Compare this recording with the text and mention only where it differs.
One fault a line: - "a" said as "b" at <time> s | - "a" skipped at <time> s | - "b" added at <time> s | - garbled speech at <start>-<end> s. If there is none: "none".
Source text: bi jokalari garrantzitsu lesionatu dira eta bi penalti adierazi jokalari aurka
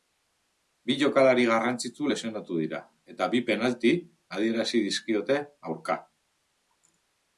- "jokalari" said as "dizkiote" at 4.9 s